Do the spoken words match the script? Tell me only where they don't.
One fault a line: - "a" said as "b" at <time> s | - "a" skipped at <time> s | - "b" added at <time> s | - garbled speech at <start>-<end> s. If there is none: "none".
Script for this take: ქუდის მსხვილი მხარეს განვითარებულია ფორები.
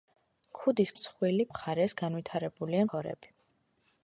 none